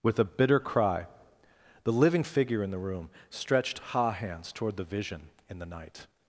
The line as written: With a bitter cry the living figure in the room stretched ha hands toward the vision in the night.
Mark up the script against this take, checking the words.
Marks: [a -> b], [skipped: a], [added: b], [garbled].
With a bitter cry the living figure in the room stretched ha hands toward the vision in the night.